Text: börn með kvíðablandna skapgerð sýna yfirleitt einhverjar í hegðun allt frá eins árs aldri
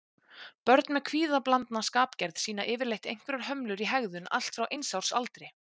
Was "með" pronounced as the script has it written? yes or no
yes